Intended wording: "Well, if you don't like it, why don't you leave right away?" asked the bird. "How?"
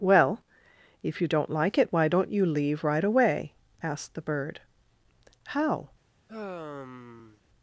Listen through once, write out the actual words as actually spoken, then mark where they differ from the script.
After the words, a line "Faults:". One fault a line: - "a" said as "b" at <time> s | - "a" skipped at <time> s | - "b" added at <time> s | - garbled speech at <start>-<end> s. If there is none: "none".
"Well, if you don't like it, why don't you leave right away?" asked the bird. "How?"
Faults:
none